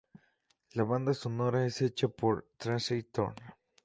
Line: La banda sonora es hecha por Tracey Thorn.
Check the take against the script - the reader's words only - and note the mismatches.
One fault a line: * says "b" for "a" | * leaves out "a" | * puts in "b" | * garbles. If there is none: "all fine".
all fine